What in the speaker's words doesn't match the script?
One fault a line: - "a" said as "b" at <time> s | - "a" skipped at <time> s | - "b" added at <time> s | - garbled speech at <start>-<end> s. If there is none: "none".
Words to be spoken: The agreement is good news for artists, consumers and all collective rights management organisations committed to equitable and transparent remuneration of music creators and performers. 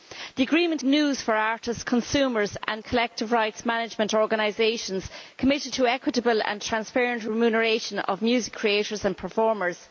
- "is good" skipped at 0.8 s
- "all" skipped at 2.8 s